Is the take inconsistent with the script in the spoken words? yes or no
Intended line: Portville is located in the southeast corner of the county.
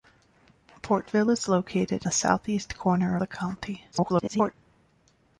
yes